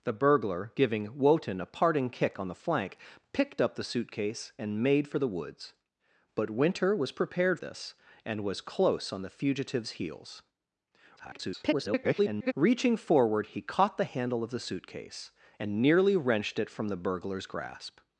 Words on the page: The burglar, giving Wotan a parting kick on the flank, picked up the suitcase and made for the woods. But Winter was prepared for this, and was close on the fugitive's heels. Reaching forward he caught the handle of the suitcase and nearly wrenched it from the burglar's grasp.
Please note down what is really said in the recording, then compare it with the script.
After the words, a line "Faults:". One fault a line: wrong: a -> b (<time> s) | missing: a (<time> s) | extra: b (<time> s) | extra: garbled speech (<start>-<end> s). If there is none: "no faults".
The burglar, giving Wotan a parting kick on the flank, picked up the suitcase and made for the woods. But Winter was prepared this, and was close on the fugitive's heels. [garbled] Reaching forward he caught the handle of the suitcase and nearly wrenched it from the burglar's grasp.
Faults:
missing: for (7.6 s)
extra: garbled speech (11.2-12.5 s)